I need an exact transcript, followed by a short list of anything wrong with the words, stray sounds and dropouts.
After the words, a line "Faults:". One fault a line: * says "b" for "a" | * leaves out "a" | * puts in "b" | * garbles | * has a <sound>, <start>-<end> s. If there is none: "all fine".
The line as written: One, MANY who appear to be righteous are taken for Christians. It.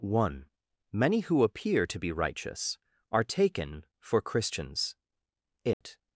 One, MANY who appear to be righteous are taken for Christians. It.
Faults:
* has a dropout, 5.7-5.8 s